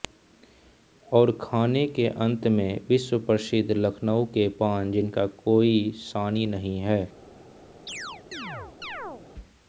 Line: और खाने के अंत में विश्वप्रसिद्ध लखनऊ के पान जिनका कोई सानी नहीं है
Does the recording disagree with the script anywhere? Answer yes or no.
no